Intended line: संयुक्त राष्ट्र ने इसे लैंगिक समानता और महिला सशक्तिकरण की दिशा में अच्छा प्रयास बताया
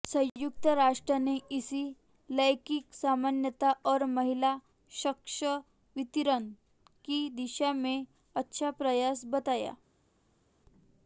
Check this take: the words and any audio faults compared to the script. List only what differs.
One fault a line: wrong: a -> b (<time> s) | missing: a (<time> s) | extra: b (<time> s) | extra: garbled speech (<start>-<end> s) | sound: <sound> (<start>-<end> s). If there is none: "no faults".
no faults